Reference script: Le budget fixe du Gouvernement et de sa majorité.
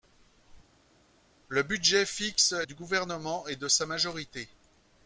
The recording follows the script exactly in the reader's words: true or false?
true